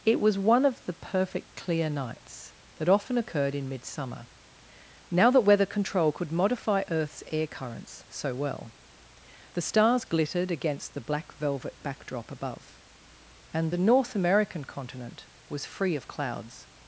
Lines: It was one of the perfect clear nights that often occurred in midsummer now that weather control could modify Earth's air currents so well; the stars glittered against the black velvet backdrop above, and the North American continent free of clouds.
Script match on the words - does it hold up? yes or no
no